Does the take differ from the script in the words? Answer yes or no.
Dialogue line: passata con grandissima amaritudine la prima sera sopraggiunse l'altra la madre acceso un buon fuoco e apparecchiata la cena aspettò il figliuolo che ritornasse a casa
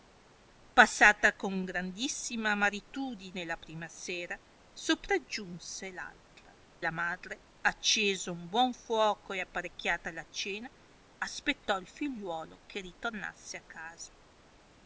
no